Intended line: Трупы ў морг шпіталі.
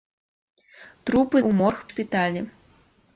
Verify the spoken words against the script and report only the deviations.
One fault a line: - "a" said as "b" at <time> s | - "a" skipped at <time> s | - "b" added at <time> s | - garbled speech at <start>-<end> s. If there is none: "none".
none